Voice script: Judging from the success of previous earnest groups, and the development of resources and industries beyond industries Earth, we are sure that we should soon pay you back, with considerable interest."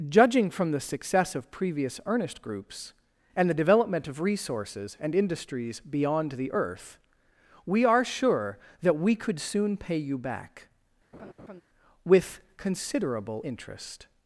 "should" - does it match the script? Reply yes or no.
no